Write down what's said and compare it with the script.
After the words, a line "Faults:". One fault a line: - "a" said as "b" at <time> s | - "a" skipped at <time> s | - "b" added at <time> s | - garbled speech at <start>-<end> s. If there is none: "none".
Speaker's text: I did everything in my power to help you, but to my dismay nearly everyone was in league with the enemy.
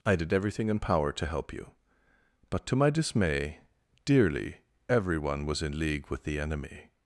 I did everything in power to help you, but to my dismay dearly everyone was in league with the enemy.
Faults:
- "my" skipped at 0.8 s
- "nearly" said as "dearly" at 4.0 s